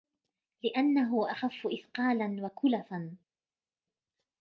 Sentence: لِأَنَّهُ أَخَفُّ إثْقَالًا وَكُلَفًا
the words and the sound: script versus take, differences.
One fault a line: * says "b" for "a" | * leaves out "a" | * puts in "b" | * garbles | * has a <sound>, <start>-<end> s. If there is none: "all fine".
all fine